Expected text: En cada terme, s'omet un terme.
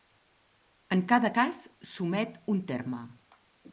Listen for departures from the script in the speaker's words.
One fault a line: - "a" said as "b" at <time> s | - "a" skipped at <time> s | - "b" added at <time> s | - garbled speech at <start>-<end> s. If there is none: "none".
- "terme" said as "cas" at 1.4 s